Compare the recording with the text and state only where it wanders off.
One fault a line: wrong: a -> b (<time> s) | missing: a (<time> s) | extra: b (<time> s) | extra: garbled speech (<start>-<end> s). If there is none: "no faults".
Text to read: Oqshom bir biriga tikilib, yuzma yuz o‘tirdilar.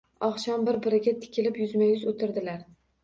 no faults